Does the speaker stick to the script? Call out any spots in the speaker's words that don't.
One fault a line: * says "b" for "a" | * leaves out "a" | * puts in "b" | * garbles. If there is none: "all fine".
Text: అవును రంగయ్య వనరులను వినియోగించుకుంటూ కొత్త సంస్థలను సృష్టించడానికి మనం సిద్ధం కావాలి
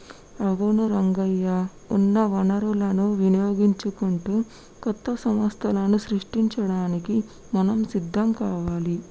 * puts in "ఉన్న"